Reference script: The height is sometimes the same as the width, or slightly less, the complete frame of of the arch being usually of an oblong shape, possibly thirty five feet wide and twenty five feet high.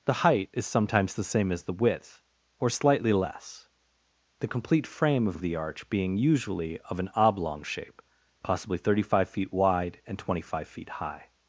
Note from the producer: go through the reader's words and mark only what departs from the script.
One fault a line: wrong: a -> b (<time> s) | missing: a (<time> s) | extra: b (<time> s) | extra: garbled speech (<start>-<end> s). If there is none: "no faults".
no faults